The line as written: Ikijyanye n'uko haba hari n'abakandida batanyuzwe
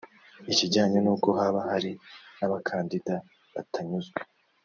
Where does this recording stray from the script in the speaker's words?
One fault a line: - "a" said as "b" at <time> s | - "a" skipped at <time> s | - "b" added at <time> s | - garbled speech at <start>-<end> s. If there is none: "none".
none